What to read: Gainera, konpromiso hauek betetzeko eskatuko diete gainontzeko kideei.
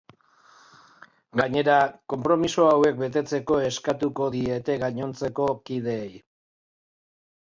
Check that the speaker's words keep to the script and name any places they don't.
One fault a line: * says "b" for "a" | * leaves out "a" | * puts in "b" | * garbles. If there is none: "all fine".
all fine